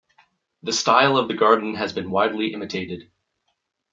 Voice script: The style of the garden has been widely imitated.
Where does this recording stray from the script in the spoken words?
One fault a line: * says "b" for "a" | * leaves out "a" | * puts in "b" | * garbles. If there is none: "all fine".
all fine